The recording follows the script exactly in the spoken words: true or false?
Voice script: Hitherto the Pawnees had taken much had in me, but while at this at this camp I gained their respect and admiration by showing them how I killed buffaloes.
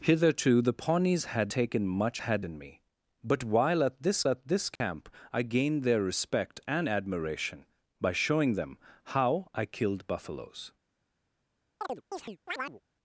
true